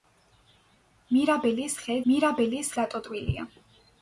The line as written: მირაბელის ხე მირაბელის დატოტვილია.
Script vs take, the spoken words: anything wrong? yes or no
no